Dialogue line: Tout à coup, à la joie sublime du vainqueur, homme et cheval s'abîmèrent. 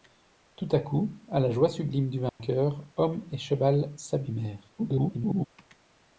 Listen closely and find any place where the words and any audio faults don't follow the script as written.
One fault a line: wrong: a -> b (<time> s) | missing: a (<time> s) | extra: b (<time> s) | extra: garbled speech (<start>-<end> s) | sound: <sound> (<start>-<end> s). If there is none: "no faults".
sound: dropout (2.3-2.4 s)
extra: garbled speech (4.8-5.5 s)